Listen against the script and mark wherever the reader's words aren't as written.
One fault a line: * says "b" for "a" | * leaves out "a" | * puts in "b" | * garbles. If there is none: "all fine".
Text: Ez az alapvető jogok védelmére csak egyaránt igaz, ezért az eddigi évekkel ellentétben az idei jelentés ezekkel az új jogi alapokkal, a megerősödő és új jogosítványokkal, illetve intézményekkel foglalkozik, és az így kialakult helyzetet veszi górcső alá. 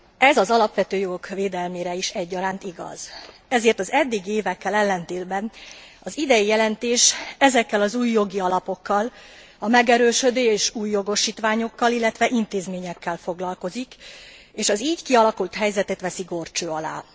* says "is" for "csak"